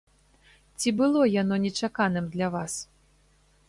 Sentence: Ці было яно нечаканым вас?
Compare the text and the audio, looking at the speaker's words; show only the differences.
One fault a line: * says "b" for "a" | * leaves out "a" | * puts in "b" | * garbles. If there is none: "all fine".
* puts in "для"